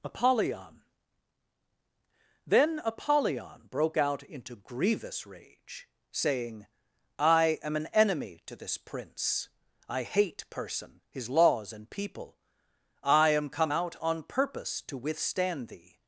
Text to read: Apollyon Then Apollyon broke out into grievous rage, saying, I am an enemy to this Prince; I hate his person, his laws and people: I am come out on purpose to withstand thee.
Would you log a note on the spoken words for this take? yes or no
yes